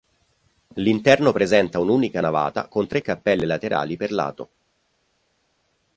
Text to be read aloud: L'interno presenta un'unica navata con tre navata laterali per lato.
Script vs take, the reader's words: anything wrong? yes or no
yes